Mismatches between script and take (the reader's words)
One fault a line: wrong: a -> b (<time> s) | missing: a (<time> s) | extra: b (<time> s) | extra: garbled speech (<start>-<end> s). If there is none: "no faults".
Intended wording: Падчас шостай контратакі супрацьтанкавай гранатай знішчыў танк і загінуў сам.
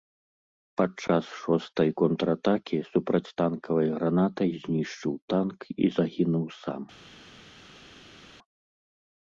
no faults